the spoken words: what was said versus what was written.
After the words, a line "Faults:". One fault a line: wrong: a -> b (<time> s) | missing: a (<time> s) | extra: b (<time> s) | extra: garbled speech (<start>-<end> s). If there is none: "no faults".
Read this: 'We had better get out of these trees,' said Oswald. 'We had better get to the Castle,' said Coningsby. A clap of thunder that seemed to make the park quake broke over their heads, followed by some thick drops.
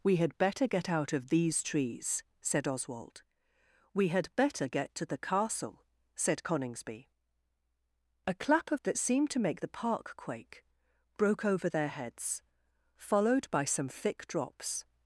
'We had better get out of these trees,' said Oswald. 'We had better get to the Castle,' said Coningsby. A clap of that seemed to make the park quake broke over their heads, followed by some thick drops.
Faults:
missing: thunder (8.8 s)